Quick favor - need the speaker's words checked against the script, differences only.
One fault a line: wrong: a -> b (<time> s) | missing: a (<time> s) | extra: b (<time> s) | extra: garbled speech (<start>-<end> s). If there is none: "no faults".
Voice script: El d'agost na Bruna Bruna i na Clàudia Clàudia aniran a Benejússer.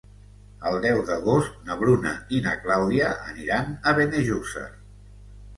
extra: deu (0.8 s)
missing: Bruna (2.1 s)
missing: Clàudia (3.1 s)